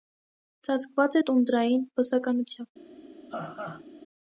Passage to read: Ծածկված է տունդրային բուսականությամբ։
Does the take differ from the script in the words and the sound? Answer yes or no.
yes